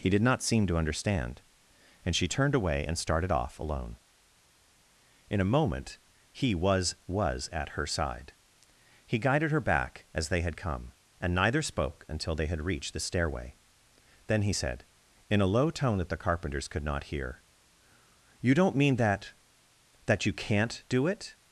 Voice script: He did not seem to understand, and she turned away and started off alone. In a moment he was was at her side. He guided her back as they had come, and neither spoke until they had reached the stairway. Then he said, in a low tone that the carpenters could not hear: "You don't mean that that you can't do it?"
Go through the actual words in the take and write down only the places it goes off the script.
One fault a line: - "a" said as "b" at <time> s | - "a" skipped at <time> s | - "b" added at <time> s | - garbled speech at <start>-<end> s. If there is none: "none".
none